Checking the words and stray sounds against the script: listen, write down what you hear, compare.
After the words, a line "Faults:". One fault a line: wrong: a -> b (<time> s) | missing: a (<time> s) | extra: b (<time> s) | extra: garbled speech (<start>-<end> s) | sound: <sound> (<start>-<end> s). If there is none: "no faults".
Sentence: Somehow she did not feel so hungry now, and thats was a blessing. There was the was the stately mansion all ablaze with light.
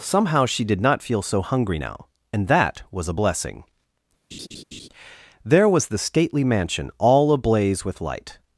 Somehow she did not feel so hungry now, and that was a blessing. There was the stately mansion all ablaze with light.
Faults:
wrong: thats -> that (2.5 s)
sound: laugh (4.3-4.9 s)
missing: was the (6.0 s)